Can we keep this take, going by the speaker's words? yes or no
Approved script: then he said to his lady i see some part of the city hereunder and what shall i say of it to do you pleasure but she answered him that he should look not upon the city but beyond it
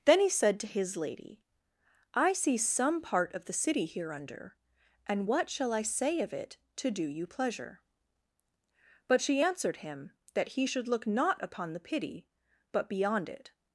no